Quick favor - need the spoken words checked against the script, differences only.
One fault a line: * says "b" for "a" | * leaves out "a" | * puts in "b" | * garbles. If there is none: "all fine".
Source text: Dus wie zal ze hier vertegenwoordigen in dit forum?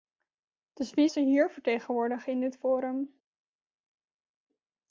* leaves out "zal"